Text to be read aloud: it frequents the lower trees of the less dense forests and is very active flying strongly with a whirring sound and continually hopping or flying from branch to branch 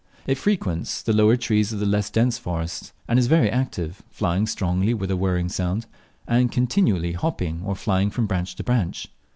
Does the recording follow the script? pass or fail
pass